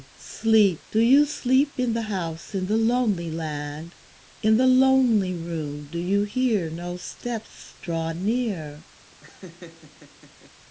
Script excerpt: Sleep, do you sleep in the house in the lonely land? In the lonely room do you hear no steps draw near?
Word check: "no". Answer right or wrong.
right